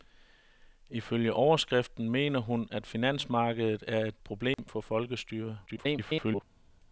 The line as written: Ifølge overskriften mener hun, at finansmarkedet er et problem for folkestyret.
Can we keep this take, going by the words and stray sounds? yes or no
no